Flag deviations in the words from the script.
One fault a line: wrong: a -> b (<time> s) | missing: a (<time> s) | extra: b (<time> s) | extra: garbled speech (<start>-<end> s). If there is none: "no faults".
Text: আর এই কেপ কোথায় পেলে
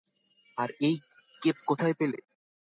no faults